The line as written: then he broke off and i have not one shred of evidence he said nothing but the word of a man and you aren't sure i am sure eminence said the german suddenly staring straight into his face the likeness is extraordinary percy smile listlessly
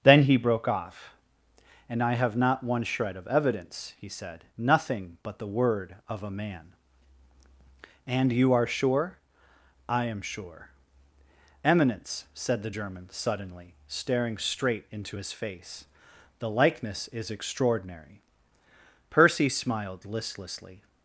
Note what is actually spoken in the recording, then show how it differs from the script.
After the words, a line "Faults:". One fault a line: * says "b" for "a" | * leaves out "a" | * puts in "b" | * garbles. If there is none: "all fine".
then he broke off and i have not one shred of evidence he said nothing but the word of a man and you are sure i am sure eminence said the german suddenly staring straight into his face the likeness is extraordinary percy smiled listlessly
Faults:
* says "are" for "aren't"
* says "smiled" for "smile"